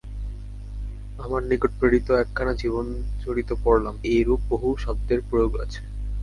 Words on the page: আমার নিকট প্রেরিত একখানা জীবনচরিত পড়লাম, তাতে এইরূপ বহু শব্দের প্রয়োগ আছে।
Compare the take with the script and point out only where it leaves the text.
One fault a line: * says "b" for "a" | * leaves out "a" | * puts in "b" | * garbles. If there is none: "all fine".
* leaves out "তাতে"